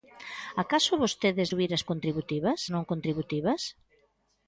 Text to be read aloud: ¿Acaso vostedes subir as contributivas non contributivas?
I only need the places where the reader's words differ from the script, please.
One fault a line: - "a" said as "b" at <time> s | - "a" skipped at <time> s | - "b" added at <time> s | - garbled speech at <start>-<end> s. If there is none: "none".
none